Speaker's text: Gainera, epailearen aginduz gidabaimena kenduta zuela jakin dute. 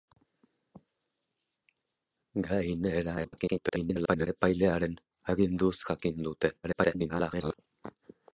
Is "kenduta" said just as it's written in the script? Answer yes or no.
no